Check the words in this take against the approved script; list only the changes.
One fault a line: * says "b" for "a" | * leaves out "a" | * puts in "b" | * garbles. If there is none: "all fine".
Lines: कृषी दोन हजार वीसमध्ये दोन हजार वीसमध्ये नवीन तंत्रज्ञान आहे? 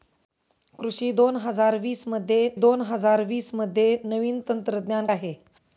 all fine